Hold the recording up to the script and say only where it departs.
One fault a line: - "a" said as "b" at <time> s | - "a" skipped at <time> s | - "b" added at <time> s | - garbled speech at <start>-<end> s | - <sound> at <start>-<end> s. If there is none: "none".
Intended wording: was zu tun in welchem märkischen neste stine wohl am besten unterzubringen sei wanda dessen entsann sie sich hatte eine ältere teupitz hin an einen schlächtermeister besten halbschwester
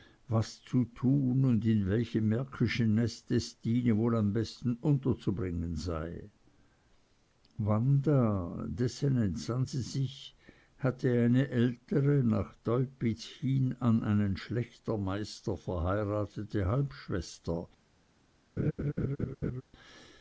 - "und" added at 1.4 s
- "nach" added at 12.2 s
- "besten" said as "verheiratete" at 15.6 s
- laugh at 18.6-19.6 s